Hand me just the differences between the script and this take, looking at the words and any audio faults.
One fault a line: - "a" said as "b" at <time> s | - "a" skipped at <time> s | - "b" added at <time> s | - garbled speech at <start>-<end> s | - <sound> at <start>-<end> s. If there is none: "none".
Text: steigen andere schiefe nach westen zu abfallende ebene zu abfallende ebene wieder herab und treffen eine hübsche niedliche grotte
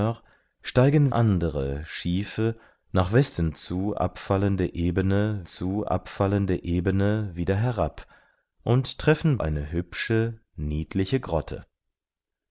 none